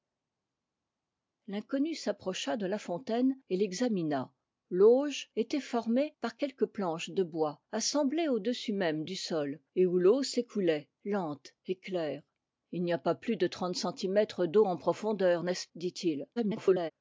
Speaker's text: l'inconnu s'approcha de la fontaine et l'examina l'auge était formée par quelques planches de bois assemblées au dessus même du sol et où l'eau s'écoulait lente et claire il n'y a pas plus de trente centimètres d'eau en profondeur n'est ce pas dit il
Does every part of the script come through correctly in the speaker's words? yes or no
no